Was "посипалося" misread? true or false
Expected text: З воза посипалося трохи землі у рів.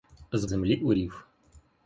true